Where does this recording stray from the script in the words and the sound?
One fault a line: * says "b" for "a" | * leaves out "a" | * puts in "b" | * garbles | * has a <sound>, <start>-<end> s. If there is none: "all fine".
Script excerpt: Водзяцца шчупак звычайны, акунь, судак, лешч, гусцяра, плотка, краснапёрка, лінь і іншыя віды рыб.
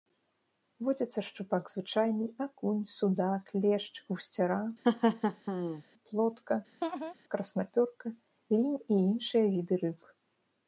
* has a laugh, 4.8-5.8 s
* has a laugh, 6.8-7.1 s